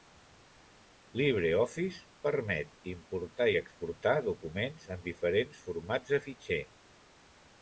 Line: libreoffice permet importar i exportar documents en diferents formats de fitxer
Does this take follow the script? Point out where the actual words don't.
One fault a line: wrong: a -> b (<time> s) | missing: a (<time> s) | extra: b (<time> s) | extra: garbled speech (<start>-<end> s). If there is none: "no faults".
no faults